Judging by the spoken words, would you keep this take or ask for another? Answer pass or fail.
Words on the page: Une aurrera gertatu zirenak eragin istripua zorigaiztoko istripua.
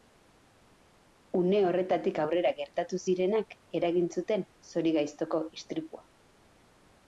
fail